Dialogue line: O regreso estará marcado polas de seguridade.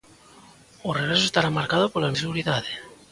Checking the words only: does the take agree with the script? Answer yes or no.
yes